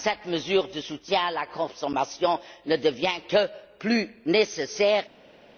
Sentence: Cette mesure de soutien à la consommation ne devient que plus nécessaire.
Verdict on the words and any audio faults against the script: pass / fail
pass